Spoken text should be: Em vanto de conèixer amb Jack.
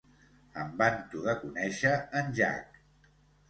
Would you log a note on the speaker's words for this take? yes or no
yes